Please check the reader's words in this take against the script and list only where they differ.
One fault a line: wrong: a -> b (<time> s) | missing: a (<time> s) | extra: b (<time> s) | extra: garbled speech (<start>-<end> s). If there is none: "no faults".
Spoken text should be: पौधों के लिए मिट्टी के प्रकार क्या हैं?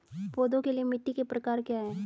no faults